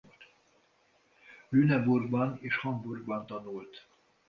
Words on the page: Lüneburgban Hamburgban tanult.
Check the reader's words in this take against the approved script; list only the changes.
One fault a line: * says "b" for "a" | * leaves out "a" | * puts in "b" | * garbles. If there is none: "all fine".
* puts in "és"